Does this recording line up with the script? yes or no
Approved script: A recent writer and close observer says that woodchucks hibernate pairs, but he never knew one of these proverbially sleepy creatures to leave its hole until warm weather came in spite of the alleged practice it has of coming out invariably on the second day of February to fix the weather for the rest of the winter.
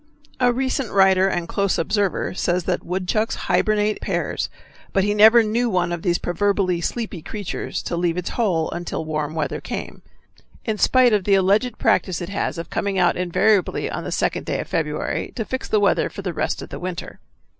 yes